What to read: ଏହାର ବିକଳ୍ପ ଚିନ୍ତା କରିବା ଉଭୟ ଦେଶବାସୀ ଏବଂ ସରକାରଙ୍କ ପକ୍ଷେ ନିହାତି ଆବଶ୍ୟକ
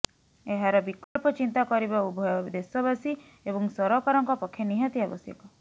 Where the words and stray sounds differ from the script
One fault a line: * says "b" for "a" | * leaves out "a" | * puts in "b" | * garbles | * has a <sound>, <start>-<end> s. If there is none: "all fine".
* has a dropout, 1.0-1.2 s